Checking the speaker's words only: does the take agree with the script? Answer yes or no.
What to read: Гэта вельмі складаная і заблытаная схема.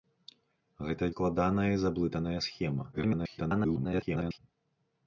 no